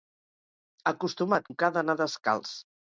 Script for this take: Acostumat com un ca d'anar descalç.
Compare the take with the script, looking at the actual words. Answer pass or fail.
fail